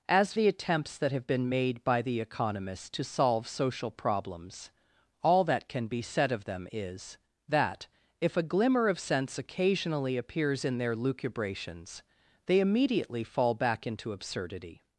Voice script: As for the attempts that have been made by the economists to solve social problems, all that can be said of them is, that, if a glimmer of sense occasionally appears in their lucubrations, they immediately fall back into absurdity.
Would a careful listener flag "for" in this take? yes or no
yes